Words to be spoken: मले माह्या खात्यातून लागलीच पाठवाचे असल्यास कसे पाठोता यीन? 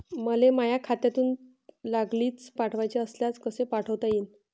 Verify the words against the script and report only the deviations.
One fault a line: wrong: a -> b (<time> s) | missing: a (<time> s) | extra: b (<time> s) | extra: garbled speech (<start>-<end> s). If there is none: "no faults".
no faults